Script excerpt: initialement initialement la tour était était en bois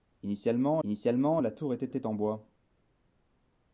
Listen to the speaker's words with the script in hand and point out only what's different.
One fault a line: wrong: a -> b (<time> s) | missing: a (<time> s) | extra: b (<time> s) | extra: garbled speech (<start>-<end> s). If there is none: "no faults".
no faults